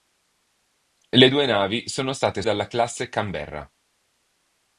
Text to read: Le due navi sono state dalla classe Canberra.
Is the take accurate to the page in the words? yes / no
yes